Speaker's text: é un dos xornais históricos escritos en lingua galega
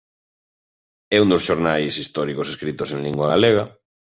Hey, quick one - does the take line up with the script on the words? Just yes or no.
yes